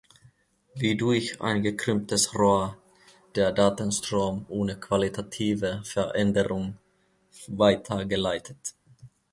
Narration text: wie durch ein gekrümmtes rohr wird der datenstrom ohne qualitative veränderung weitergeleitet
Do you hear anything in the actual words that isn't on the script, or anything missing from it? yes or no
yes